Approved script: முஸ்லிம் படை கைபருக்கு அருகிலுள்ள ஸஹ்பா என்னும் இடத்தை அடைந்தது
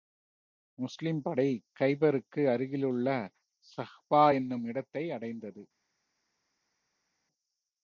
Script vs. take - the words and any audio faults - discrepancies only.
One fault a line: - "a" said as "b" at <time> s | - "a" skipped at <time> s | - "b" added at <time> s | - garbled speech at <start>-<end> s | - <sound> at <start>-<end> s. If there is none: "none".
none